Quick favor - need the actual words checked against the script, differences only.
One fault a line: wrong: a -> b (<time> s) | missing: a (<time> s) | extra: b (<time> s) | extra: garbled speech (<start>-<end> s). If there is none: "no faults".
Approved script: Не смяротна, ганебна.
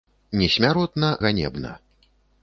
no faults